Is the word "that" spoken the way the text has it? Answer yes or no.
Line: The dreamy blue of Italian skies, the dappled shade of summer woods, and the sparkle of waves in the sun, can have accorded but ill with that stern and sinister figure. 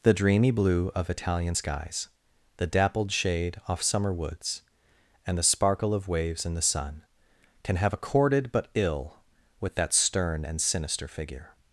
yes